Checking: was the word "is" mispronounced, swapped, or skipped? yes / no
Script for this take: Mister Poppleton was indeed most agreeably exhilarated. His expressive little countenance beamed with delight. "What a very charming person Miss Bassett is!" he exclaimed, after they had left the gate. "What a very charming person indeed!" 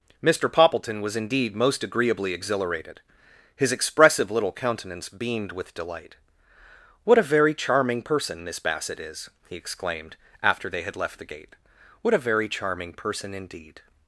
no